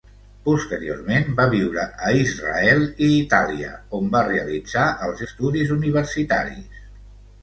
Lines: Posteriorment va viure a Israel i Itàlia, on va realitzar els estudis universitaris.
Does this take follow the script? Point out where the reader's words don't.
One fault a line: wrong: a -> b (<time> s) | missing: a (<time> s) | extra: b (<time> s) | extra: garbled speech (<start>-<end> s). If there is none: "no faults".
no faults